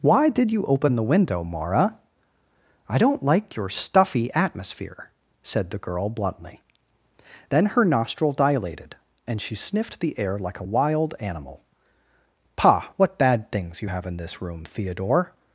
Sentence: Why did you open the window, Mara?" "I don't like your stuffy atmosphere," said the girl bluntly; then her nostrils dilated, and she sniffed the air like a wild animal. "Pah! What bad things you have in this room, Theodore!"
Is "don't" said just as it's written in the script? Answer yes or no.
yes